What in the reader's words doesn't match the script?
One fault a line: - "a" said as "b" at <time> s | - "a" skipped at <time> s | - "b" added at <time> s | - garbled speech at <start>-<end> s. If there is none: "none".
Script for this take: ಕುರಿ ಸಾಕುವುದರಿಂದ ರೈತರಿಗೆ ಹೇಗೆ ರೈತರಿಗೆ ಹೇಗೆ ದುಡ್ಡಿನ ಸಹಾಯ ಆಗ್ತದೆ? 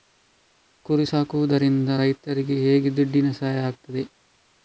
- "ರೈತರಿಗೆ ಹೇಗೆ" skipped at 2.9 s